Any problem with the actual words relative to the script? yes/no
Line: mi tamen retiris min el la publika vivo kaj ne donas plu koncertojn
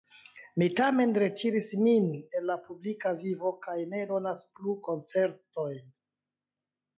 no